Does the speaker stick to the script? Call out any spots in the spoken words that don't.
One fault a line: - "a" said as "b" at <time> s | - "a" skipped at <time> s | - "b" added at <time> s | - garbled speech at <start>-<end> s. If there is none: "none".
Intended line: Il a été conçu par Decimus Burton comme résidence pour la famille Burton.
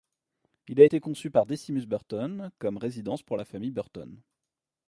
none